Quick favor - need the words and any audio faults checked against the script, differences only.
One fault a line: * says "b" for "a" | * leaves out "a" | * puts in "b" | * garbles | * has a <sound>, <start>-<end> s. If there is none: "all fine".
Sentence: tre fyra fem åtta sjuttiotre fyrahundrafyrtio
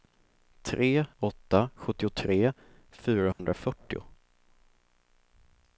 * leaves out "fyra fem"
* has a dropout, 3.3-3.4 s